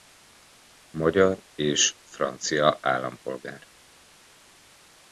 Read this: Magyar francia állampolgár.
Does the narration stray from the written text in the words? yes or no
yes